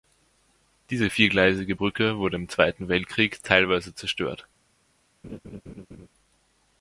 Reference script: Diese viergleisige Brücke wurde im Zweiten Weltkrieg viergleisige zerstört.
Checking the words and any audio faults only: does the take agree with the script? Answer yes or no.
no